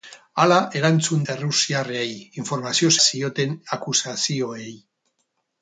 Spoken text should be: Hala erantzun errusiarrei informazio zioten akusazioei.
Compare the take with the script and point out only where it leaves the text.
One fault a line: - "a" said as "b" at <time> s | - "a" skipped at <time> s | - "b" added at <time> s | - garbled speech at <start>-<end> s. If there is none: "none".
none